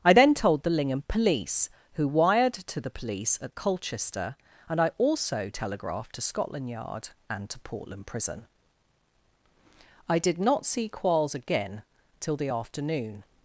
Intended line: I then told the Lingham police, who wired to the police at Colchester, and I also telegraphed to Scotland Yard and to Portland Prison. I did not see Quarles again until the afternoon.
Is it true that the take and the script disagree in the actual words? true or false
true